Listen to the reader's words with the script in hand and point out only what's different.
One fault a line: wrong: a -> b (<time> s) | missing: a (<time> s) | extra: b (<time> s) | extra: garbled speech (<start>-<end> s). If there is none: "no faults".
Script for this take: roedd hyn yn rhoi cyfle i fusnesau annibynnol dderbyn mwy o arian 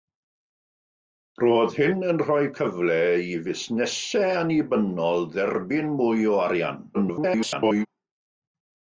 extra: garbled speech (6.9-7.9 s)